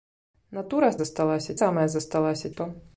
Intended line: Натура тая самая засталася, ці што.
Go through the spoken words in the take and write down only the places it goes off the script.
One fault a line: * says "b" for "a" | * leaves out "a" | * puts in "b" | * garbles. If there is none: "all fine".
* says "засталася" for "тая"
* leaves out "ці"